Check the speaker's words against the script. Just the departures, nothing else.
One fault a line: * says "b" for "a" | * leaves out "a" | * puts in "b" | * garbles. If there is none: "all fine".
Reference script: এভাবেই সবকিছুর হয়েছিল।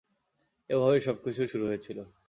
* puts in "শুরু"